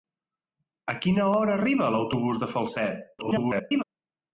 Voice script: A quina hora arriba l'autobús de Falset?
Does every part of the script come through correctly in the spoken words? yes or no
no